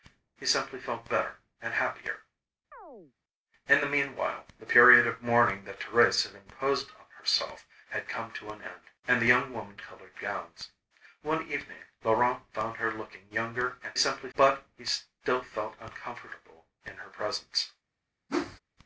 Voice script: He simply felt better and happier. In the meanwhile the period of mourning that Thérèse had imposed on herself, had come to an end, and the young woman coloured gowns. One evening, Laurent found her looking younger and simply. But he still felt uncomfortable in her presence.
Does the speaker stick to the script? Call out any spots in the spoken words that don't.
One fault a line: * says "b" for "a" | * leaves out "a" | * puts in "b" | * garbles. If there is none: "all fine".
all fine